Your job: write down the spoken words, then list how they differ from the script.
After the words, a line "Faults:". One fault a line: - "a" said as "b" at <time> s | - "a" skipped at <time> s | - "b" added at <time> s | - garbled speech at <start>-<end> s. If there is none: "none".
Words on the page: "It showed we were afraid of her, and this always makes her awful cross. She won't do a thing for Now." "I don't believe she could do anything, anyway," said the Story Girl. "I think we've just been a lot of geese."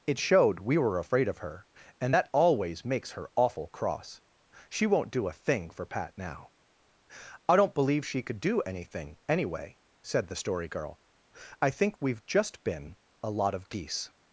"It showed we were afraid of her, and that always makes her awful cross. She won't do a thing for Pat now." "I don't believe she could do anything, anyway," said the Story Girl. "I think we've just been a lot of geese."
Faults:
- "this" said as "that" at 2.1 s
- "Pat" added at 5.8 s